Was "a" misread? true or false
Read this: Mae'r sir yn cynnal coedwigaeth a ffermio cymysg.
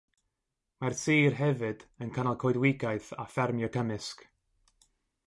false